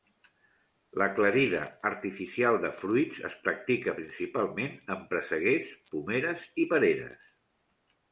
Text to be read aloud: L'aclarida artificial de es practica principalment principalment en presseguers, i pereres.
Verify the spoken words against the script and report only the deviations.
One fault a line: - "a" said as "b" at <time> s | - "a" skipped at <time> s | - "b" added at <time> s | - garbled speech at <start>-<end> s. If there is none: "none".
- "fruits" added at 2.8 s
- "principalment" skipped at 4.8 s
- "pomeres" added at 5.9 s